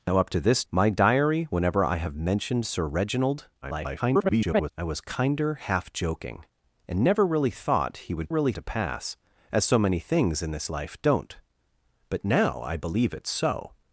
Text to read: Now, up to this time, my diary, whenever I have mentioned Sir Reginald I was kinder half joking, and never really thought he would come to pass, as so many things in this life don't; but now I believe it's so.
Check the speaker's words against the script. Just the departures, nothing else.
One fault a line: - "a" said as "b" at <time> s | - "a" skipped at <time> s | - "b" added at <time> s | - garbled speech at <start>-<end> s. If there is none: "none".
- "time" skipped at 0.6 s
- garbled speech at 3.6-4.7 s
- "come" said as "really" at 8.3 s